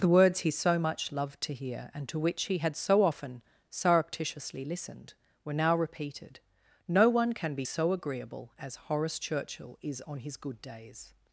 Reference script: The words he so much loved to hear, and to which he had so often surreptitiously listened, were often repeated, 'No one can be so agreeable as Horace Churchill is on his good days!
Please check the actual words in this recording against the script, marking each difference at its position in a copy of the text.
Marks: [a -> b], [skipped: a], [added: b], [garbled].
The words he so much loved to hear, and to which he had so often surreptitiously listened, were [often -> now] repeated, 'No one can be so agreeable as Horace Churchill is on his good days!